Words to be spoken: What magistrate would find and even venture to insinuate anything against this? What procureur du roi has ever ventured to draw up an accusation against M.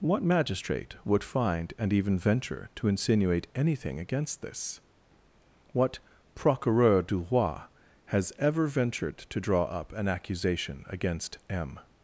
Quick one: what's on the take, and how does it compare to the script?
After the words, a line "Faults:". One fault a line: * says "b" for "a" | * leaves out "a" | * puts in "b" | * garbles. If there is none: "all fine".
What magistrate would find and even venture to insinuate anything against this? What procureur du roi has ever ventured to draw up an accusation against M.
Faults:
all fine